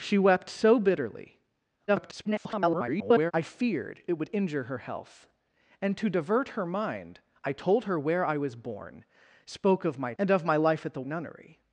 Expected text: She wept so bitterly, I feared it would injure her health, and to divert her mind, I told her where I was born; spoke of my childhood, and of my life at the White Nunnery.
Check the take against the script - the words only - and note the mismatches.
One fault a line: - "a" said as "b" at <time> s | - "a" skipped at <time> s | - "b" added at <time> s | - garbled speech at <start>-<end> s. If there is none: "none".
- garbled speech at 1.9-3.3 s
- "childhood" skipped at 10.1 s
- "White" skipped at 11.0 s